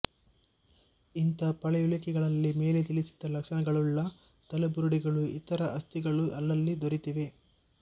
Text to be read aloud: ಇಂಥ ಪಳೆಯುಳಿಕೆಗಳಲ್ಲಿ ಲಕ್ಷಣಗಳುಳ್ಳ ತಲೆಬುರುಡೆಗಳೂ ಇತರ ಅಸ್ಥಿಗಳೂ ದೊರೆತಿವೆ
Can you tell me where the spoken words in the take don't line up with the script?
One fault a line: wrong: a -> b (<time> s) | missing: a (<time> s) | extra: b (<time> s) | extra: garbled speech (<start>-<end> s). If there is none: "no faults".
extra: ಮೇಲೆ ತಿಳಿಸಿದ (2.5 s)
extra: ಅಲ್ಲಲ್ಲಿ (6.4 s)